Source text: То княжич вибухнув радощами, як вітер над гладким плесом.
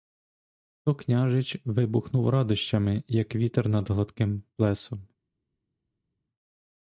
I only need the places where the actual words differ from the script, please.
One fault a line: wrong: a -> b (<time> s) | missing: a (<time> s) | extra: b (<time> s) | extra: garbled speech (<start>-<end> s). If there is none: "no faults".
no faults